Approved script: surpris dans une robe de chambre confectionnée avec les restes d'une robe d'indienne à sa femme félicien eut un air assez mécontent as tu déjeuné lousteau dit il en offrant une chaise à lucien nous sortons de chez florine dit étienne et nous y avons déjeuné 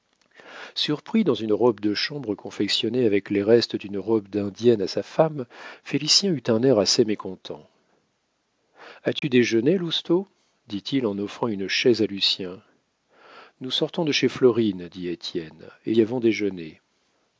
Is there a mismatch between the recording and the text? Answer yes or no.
yes